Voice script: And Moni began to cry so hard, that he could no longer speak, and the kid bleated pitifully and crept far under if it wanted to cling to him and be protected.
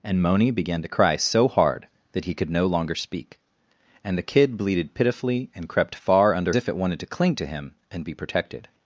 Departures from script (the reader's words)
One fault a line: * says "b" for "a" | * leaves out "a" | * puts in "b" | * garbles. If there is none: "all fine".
all fine